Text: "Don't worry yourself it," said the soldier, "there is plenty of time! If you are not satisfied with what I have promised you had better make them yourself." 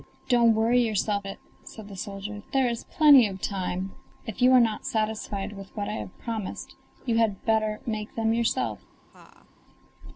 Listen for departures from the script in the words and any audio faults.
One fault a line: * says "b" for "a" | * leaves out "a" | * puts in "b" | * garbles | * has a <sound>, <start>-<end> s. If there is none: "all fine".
* has a laugh, 9.1-9.5 s